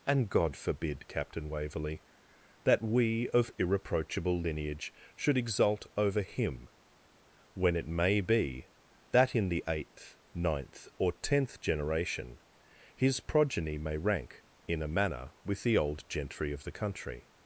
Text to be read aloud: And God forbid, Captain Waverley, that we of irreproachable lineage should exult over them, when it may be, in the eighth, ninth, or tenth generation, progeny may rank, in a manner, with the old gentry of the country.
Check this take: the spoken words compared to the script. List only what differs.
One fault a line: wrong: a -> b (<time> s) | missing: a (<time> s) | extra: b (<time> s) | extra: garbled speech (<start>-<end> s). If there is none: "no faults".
wrong: them -> him (6.2 s)
extra: that (9.1 s)
extra: his (12.9 s)